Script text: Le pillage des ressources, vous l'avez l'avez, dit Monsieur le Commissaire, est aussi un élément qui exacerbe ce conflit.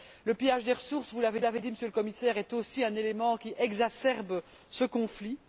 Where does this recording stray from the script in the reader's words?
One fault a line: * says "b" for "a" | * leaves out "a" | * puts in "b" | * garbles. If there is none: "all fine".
all fine